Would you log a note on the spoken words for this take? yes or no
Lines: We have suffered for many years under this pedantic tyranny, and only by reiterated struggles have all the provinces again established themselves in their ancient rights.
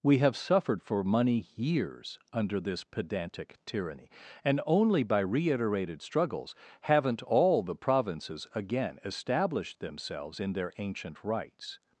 yes